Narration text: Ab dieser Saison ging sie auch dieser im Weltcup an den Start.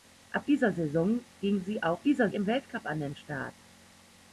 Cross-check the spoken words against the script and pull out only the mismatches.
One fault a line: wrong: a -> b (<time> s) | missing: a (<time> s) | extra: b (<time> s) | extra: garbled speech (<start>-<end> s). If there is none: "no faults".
no faults